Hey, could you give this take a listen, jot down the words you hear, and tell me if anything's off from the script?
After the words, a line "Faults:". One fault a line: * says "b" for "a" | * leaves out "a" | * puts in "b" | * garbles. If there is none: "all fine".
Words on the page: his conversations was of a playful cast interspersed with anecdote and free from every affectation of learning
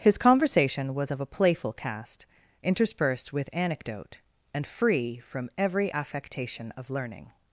his conversation was of a playful cast interspersed with anecdote and free from every affectation of learning
Faults:
* says "conversation" for "conversations"